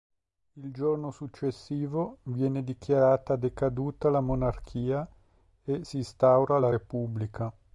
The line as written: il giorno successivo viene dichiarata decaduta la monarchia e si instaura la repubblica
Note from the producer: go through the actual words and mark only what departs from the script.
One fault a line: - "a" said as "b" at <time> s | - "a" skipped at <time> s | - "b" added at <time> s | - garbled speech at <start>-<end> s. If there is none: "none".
none